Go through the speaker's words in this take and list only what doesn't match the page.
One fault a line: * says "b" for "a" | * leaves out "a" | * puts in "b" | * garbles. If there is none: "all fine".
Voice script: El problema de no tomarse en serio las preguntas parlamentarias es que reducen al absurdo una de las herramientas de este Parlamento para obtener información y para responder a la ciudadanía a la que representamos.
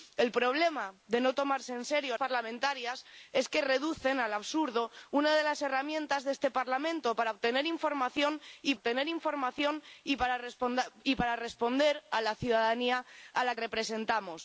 * leaves out "las preguntas"
* puts in "obtener información y"
* leaves out "que"